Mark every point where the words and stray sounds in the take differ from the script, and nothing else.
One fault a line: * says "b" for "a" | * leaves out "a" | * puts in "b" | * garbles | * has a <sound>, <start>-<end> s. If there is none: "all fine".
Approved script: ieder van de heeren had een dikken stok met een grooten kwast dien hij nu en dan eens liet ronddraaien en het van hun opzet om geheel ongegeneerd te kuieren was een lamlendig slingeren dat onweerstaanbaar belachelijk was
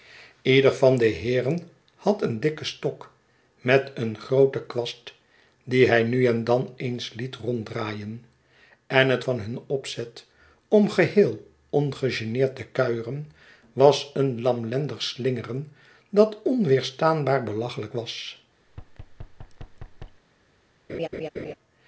* has a thud, 18.7-20.2 s
* has a laugh, 20.9-21.5 s